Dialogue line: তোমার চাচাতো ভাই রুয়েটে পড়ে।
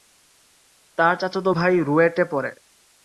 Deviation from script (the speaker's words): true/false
true